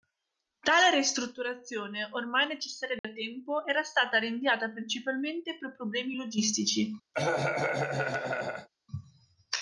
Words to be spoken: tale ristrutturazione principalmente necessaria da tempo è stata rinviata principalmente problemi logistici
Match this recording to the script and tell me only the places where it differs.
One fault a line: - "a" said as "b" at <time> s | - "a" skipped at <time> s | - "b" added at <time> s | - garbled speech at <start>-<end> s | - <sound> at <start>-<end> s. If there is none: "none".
- "principalmente" said as "ormai" at 2.1 s
- dropout at 3.0-3.0 s
- "è" said as "era" at 3.7 s
- "per" added at 5.6 s
- cough at 7.1-8.7 s